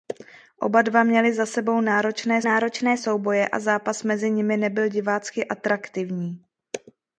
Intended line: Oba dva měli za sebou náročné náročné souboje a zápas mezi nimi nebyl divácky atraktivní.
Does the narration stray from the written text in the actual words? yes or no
no